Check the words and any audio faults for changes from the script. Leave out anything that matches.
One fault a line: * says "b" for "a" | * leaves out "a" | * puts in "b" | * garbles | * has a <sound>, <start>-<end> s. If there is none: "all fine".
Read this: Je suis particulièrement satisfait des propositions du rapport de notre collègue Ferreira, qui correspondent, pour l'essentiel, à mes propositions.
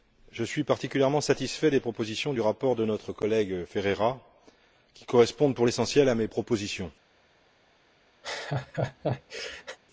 * has a laugh, 8.2-9.8 s